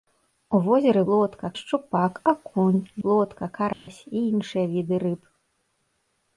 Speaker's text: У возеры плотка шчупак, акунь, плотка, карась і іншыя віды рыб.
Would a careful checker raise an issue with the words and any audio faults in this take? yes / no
yes